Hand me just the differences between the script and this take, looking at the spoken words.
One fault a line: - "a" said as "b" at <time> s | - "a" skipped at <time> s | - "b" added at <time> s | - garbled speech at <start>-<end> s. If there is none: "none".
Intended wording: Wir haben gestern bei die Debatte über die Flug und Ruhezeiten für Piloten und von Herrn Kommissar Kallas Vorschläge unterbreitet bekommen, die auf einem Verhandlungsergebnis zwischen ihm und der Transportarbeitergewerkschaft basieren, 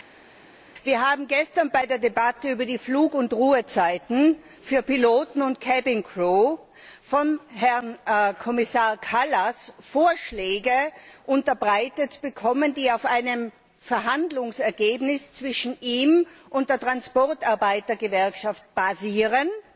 - "die" said as "der" at 1.9 s